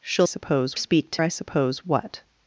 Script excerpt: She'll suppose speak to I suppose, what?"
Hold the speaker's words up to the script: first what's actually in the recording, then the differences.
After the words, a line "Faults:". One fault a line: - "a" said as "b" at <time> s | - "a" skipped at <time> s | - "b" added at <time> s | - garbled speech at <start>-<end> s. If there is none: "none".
She'll suppose speak to I suppose, what?"
Faults:
none